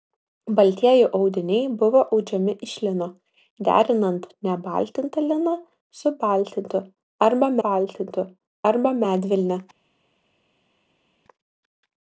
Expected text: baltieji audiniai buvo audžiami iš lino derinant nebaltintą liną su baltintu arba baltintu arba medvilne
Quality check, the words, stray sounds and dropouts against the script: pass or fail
pass